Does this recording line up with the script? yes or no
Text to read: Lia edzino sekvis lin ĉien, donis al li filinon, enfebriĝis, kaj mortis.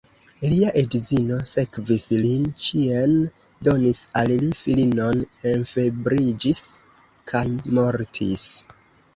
yes